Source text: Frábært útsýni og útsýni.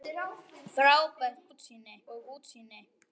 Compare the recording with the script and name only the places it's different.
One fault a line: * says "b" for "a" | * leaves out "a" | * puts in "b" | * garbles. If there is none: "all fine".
all fine